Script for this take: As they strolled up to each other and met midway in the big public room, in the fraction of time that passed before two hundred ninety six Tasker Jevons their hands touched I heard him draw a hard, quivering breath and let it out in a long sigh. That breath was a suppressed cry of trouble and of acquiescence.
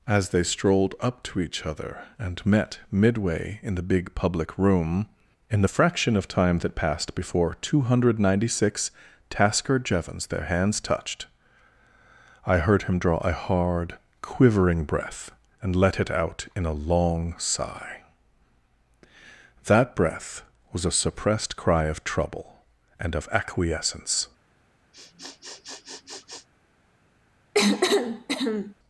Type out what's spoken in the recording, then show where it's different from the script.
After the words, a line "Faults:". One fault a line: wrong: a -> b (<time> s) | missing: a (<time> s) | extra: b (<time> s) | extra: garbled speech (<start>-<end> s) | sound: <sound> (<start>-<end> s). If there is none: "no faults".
As they strolled up to each other and met midway in the big public room, in the fraction of time that passed before two hundred ninety six Tasker Jevons their hands touched I heard him draw a hard, quivering breath and let it out in a long sigh. That breath was a suppressed cry of trouble and of acquiescence.
Faults:
sound: sniff (24.9-26.5 s)
sound: cough (27.5-28.7 s)